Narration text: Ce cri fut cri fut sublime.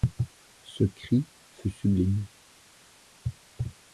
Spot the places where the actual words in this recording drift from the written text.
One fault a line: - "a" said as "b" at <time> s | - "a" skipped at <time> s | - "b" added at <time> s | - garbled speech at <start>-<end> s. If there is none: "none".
- "cri fut" skipped at 1.7 s